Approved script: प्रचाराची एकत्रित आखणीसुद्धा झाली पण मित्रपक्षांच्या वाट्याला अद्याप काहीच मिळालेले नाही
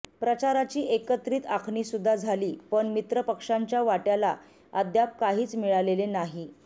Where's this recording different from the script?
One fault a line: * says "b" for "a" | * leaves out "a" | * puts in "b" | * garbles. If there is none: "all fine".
all fine